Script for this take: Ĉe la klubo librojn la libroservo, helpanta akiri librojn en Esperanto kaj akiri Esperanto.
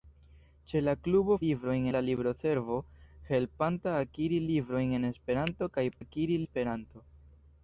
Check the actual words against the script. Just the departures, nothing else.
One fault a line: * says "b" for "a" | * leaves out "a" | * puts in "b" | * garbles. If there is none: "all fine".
all fine